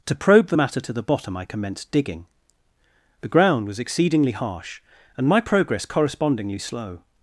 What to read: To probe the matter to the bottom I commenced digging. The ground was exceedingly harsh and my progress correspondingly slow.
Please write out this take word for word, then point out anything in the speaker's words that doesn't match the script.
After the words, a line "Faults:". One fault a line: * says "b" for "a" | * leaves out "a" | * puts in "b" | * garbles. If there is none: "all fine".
To probe the matter to the bottom I commenced digging. The ground was exceedingly harsh and my progress correspondingly slow.
Faults:
all fine